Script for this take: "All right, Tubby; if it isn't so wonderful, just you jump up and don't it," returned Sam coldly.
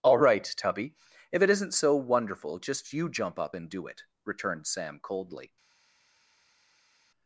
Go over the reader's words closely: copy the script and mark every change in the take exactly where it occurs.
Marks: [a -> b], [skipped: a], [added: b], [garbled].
"All right, Tubby; if it isn't so wonderful, just you jump up and [don't -> do] it," returned Sam coldly.